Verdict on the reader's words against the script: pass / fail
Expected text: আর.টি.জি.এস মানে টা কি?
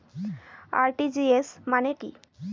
fail